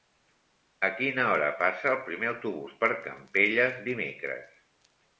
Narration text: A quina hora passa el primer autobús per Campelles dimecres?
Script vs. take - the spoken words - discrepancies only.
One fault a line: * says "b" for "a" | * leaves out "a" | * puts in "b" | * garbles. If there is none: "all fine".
all fine